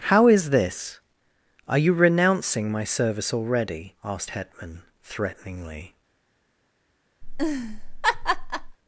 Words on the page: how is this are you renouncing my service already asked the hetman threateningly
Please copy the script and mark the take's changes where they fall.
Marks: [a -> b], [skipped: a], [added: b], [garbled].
how is this are you renouncing my service already asked [skipped: the] hetman threateningly